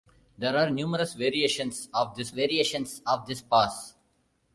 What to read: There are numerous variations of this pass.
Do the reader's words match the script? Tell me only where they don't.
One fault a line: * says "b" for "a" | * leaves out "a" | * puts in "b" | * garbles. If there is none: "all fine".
* puts in "variations of this"